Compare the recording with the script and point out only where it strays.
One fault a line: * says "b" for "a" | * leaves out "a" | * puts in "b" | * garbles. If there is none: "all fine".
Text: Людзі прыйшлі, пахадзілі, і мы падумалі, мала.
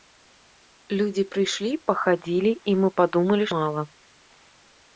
all fine